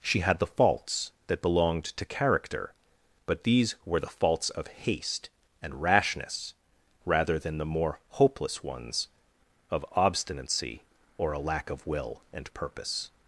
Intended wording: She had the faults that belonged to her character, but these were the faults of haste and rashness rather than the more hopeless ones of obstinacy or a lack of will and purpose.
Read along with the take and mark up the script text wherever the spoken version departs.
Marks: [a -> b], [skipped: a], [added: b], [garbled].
She had the faults that belonged to [skipped: her] character, but these were the faults of haste and rashness rather than the more hopeless ones of obstinacy or a lack of will and purpose.